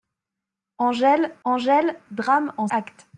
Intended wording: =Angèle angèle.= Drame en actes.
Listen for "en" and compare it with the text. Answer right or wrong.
right